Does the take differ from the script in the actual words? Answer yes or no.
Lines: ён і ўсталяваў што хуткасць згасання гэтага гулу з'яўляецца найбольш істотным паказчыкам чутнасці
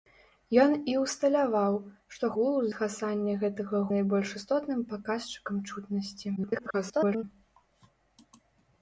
yes